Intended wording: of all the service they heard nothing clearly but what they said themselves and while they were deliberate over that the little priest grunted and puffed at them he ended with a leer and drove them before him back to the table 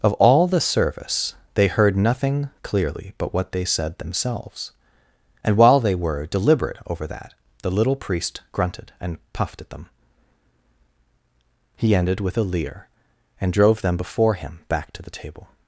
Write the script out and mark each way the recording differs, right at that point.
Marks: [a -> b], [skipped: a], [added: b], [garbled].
of all the service they heard nothing clearly but what they said themselves and while they were deliberate over that the little priest grunted and puffed at them he ended with a leer and drove them before him back to the table